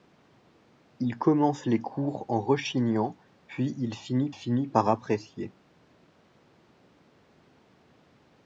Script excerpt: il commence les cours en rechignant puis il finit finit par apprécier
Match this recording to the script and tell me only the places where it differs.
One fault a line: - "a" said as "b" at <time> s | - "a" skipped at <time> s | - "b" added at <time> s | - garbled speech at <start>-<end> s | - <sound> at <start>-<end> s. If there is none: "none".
none